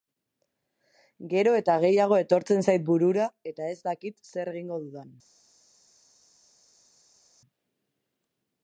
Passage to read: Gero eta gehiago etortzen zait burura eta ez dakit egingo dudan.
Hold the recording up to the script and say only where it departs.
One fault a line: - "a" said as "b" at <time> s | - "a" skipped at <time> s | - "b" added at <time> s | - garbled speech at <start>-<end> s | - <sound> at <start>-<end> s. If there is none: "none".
- "zer" added at 4.3 s